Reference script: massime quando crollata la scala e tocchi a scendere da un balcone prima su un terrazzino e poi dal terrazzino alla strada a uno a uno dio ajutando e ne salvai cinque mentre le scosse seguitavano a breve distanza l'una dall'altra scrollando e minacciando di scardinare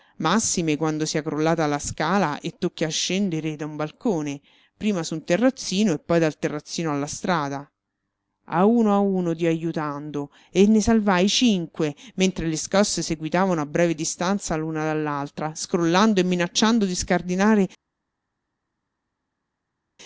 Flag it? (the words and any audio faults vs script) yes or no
yes